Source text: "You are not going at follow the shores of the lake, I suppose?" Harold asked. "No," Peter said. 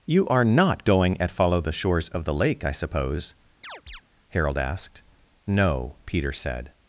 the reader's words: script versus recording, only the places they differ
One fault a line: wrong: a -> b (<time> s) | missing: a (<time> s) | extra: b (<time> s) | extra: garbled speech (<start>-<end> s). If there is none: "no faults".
no faults